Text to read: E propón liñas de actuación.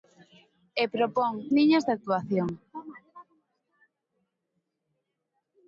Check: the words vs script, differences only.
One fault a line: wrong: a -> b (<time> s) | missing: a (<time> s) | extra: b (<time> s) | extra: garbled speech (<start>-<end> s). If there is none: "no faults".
no faults